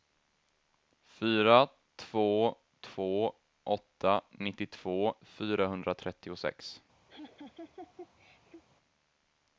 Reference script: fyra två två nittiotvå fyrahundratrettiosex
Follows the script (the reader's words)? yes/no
no